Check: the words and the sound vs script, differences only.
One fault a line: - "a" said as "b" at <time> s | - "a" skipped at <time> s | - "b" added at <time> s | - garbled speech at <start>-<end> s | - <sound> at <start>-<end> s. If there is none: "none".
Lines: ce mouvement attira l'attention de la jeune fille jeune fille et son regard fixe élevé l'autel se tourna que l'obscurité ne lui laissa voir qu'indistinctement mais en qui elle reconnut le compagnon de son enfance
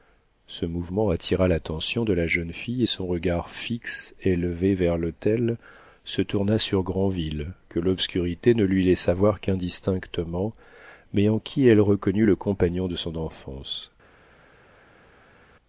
- "jeune fille" skipped at 2.8 s
- "vers" added at 4.7 s
- "sur granville" added at 6.6 s